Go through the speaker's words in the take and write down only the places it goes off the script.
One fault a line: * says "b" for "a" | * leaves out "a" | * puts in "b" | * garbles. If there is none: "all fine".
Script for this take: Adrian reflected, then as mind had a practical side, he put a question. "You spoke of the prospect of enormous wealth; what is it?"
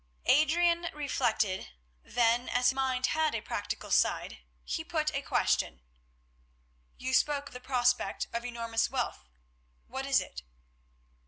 all fine